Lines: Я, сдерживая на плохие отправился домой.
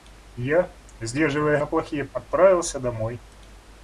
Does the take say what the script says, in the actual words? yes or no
yes